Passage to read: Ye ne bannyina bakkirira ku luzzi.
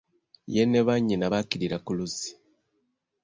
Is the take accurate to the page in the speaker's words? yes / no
yes